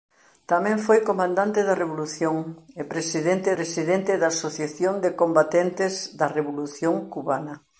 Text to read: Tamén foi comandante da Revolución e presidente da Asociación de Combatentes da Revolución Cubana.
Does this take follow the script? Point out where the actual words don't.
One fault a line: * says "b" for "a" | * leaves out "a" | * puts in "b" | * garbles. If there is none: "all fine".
* puts in "presidente"